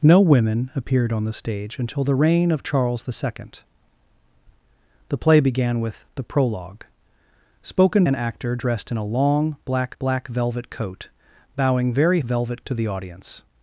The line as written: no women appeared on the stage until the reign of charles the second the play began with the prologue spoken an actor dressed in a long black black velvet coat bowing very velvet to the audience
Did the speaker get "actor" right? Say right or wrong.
right